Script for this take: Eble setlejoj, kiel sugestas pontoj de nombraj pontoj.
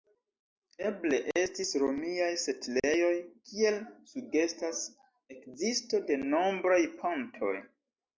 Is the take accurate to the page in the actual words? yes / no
no